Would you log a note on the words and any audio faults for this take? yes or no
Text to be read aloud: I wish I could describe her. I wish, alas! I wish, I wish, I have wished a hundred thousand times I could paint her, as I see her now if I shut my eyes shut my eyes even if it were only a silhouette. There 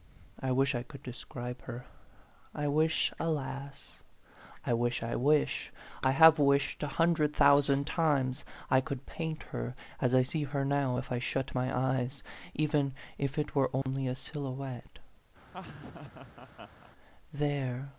yes